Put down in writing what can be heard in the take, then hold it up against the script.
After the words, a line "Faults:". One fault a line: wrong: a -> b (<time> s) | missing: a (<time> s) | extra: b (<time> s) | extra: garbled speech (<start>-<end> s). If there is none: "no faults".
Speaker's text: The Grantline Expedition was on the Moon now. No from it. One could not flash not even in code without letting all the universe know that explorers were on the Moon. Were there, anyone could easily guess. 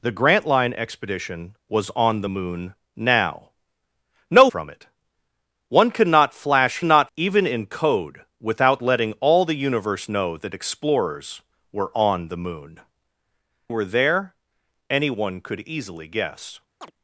The Grantline Expedition was on the Moon now. No from it. One could not flash not even in code without letting all the universe know that explorers were on the Moon. Were there, anyone could easily guess.
Faults:
no faults